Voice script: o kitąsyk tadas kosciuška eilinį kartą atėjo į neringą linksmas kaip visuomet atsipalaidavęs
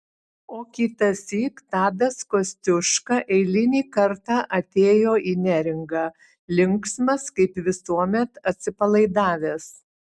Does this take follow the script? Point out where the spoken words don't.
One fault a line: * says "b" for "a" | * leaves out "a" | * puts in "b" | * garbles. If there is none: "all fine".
all fine